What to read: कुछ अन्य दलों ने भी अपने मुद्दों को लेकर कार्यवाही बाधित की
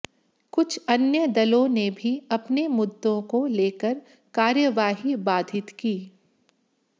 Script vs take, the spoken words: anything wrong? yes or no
no